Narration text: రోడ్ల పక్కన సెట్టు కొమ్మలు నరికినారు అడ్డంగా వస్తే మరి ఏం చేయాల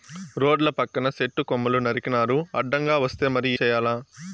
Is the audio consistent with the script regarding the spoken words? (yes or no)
no